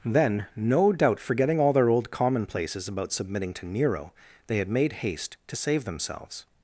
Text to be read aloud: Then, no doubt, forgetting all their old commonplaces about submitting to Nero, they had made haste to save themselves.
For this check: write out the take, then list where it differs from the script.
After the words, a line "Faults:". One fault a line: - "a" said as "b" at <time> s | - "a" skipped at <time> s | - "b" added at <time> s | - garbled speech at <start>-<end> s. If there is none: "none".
Then, no doubt, forgetting all their old commonplaces about submitting to Nero, they had made haste to save themselves.
Faults:
none